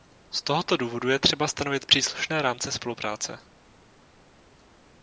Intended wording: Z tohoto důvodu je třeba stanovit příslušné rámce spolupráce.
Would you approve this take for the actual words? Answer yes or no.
yes